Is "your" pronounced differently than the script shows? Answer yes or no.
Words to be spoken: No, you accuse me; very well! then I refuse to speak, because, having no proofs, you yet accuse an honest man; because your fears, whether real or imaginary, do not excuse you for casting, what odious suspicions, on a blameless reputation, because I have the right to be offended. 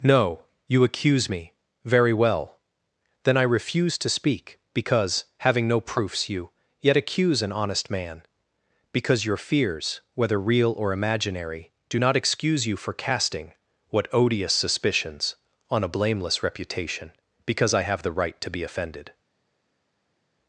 no